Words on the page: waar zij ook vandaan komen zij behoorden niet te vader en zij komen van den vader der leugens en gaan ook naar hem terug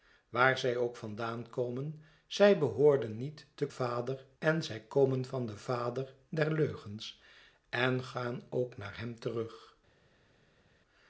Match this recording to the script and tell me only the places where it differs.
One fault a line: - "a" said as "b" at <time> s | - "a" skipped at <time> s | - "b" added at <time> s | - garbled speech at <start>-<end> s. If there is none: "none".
none